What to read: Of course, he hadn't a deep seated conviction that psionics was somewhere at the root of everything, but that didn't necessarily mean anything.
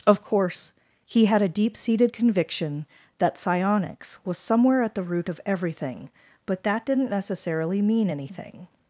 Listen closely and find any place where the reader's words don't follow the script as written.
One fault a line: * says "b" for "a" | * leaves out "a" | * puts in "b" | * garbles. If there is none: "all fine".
* says "had" for "hadn't"